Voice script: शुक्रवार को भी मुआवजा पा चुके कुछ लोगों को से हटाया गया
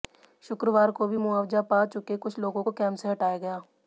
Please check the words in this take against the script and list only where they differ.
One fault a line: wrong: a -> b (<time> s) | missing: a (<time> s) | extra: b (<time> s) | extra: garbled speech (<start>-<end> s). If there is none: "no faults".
extra: कैंप (2.7 s)